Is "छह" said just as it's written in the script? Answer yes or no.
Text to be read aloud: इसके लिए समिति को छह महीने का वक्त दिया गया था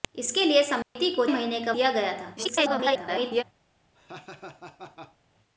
no